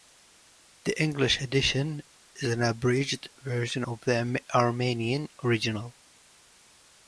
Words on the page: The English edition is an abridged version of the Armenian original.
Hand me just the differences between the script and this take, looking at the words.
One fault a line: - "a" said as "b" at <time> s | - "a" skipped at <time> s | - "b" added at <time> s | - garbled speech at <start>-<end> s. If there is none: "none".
none